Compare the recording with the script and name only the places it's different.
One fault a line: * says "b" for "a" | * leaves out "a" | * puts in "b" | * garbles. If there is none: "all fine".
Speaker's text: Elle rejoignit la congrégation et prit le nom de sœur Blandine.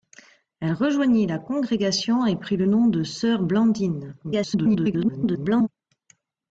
* garbles